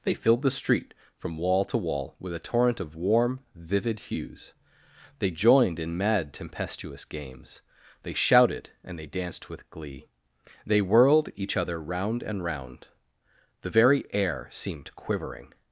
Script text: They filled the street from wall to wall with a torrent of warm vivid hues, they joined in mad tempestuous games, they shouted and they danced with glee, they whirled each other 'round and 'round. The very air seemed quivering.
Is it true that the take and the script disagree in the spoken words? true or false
false